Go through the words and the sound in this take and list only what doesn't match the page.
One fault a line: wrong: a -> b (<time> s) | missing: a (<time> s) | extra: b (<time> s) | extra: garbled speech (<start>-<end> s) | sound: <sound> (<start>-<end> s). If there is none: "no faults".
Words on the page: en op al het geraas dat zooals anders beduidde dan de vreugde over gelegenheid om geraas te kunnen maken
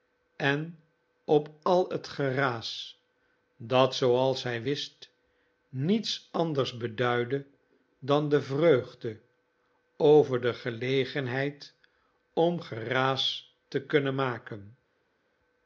extra: hij wist niets (4.4 s)
extra: de (10.4 s)